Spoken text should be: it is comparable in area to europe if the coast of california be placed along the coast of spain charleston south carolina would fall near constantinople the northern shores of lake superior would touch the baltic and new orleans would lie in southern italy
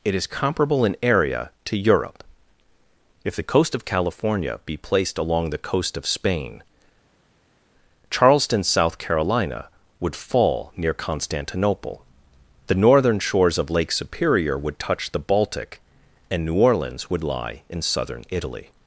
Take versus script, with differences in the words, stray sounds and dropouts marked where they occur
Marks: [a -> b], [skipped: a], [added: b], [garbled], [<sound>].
it is comparable in area to europe if the coast of california be placed along the coast of spain charleston south carolina would fall near constantinople the northern shores of lake superior would touch the baltic and new orleans would lie in southern italy